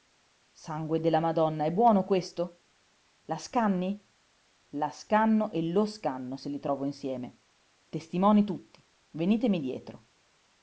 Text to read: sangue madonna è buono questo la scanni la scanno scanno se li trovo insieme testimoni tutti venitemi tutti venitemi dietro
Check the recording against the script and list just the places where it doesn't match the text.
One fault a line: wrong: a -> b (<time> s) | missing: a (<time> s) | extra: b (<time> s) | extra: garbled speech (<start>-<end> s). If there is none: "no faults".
extra: della (1.0 s)
extra: e lo (5.5 s)
missing: tutti venitemi (9.6 s)